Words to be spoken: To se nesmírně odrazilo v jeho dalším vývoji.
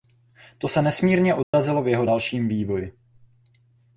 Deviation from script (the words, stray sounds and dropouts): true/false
true